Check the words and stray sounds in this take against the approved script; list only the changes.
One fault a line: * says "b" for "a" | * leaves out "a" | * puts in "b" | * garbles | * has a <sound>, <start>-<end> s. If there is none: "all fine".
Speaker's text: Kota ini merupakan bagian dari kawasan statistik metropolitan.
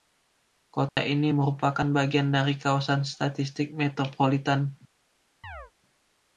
* has a dropout, 0.9-1.0 s
* has a chirp, 5.4-5.7 s